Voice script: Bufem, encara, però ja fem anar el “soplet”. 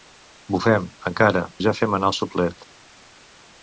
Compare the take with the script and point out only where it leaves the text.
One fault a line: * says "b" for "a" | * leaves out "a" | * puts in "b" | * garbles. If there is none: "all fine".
* leaves out "però"